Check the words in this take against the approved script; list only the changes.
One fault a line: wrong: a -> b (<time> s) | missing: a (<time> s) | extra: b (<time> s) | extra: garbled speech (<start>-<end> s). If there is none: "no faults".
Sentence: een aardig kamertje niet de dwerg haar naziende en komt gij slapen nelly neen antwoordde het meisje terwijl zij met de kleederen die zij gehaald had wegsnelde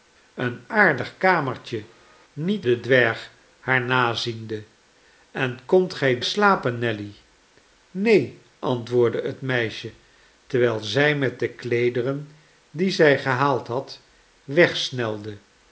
no faults